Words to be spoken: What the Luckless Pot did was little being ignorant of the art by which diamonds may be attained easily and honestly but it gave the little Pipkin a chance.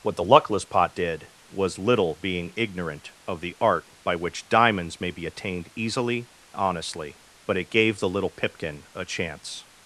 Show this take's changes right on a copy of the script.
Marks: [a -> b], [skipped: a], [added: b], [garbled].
What the Luckless Pot did was little being ignorant of the art by which diamonds may be attained easily [skipped: and] honestly but it gave the little Pipkin a chance.